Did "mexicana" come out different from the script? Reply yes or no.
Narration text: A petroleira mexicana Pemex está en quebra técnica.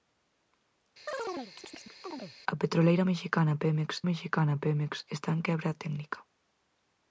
no